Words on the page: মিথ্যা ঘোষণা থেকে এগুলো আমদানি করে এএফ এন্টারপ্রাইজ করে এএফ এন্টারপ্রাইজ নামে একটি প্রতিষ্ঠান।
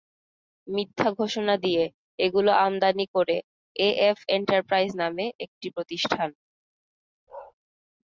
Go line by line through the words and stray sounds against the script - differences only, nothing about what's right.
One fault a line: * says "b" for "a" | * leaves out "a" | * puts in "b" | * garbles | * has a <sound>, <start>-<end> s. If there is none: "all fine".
* says "দিয়ে" for "থেকে"
* leaves out "করে এএফ এন্টারপ্রাইজ"
* has a bark, 7.3-7.5 s